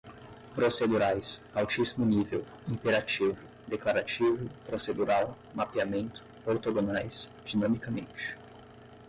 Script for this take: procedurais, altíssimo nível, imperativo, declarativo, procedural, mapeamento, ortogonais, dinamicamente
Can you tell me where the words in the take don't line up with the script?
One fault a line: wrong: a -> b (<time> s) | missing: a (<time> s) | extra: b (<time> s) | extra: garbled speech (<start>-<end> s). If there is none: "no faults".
no faults